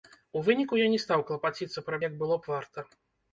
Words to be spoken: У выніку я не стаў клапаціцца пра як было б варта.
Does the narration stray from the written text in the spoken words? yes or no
no